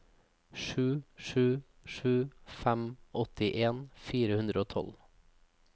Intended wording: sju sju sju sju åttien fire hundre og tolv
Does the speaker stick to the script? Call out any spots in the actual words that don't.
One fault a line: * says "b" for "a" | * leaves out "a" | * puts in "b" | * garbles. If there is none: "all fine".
* says "fem" for "sju"